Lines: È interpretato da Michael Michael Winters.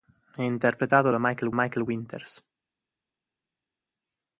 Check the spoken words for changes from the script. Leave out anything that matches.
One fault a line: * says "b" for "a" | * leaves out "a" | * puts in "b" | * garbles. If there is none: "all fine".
all fine